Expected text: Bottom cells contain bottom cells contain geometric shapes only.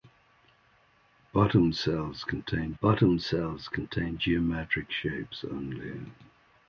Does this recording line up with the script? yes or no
yes